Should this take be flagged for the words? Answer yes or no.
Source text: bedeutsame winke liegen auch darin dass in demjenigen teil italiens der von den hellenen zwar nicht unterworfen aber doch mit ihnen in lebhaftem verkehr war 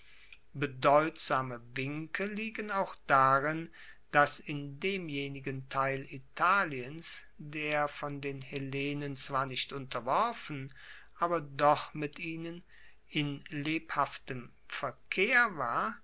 no